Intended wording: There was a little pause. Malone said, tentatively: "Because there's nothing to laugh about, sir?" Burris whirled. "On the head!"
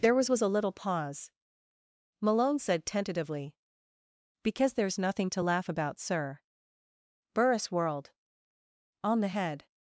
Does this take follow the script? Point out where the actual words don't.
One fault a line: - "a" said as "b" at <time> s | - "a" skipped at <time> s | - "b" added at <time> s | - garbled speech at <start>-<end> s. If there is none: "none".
- "was" added at 0.3 s